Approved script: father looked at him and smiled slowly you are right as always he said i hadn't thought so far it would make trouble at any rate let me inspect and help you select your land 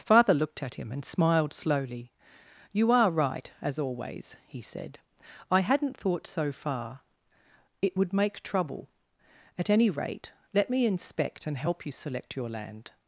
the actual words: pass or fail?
pass